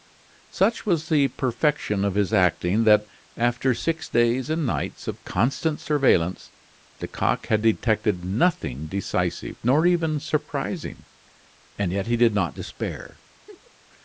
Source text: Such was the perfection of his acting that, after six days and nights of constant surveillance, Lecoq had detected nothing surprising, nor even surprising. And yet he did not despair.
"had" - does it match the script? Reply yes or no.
yes